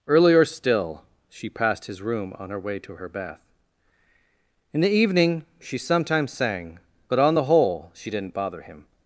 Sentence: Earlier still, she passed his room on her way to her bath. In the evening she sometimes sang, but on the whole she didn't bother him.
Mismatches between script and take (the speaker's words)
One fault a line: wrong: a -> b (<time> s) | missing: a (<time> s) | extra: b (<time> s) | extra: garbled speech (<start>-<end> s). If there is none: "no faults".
no faults